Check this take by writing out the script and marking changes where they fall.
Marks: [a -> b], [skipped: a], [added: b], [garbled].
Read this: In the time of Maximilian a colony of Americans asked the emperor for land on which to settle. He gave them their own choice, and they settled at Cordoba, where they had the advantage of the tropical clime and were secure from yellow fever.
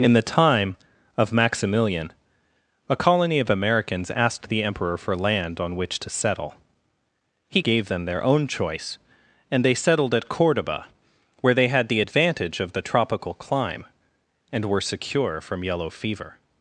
In the time of Maximilian a colony of Americans asked the emperor for land on which to settle. He gave them their own choice, and they settled at Cordoba, where they had the advantage of the tropical clime and were secure from yellow fever.